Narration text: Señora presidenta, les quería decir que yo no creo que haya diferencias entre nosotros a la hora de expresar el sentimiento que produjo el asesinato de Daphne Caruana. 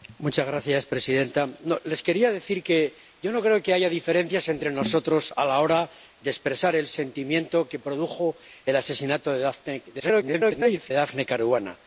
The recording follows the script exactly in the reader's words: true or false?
false